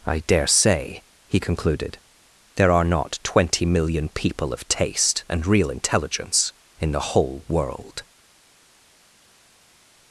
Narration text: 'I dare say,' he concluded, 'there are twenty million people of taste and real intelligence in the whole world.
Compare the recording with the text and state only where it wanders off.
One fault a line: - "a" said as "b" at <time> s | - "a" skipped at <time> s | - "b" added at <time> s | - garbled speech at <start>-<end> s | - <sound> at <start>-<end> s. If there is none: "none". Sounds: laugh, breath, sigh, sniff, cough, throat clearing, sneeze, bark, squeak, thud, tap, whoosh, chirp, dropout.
- "not" added at 2.9 s